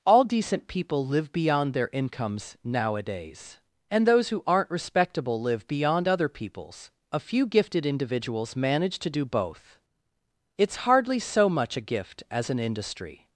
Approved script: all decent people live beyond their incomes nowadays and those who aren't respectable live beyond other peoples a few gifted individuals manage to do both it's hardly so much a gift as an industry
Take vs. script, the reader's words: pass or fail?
pass